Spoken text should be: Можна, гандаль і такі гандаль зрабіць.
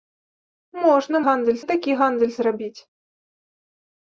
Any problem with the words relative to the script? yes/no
no